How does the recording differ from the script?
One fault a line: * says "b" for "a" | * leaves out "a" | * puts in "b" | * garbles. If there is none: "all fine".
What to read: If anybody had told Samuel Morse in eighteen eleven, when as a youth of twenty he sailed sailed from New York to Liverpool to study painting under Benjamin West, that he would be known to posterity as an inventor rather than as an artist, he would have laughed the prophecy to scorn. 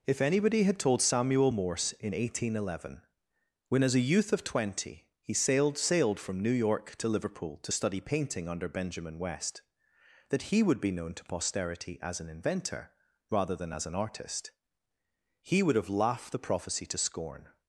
all fine